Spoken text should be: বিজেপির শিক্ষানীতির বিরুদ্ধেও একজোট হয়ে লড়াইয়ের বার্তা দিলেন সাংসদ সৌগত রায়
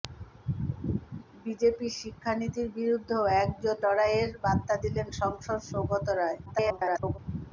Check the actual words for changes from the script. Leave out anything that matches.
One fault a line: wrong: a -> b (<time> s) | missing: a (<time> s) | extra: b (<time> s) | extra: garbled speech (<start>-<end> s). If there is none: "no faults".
missing: হয়ে (3.8 s)
extra: garbled speech (6.5-7.2 s)